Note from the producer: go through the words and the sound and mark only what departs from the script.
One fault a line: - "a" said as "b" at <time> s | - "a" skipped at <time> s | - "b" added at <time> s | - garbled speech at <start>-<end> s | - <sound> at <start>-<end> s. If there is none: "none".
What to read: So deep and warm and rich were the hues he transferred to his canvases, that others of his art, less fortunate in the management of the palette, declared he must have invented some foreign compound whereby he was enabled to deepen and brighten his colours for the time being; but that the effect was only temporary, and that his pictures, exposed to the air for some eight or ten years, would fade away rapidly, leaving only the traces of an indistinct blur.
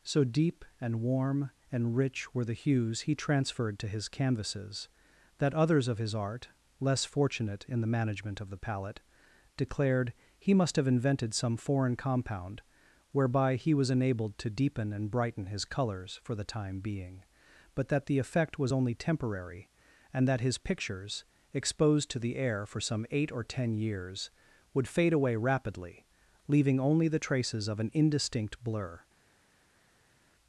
none